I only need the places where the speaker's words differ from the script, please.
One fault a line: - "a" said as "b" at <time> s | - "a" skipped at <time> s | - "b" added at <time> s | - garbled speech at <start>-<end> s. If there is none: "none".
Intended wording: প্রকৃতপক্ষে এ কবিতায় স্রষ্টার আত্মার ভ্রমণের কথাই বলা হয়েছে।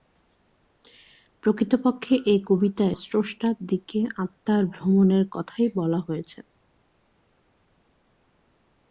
- "দিকে" added at 3.7 s